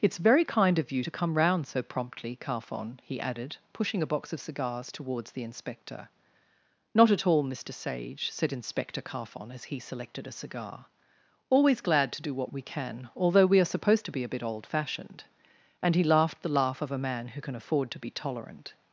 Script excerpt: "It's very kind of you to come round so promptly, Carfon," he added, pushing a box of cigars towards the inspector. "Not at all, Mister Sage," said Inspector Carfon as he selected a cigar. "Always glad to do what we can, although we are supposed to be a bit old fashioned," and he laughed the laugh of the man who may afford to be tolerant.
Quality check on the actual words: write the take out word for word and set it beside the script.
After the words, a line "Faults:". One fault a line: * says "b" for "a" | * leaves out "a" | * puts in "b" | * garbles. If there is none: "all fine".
"It's very kind of you to come round so promptly, Carfon," he added, pushing a box of cigars towards the inspector. "Not at all, Mister Sage," said Inspector Carfon as he selected a cigar. "Always glad to do what we can, although we are supposed to be a bit old fashioned," and he laughed the laugh of a man who can afford to be tolerant.
Faults:
* says "a" for "the"
* says "can" for "may"